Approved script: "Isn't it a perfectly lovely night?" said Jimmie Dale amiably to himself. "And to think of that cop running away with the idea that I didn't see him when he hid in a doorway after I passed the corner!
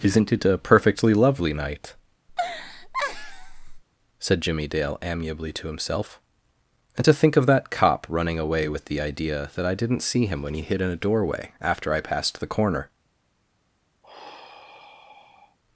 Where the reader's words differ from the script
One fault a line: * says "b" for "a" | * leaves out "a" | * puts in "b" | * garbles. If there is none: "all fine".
all fine